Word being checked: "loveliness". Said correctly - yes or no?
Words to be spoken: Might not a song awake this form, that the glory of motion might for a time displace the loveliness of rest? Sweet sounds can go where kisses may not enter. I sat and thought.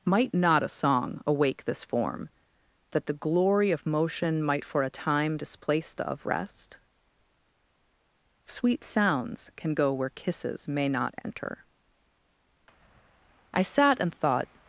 no